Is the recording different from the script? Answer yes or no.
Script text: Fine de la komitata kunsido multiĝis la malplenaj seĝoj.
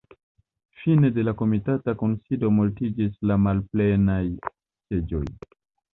no